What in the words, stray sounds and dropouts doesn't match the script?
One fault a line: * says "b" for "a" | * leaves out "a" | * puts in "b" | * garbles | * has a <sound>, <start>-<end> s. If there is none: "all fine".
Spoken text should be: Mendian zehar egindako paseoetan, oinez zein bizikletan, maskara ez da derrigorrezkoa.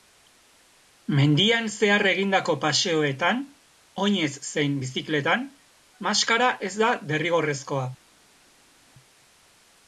all fine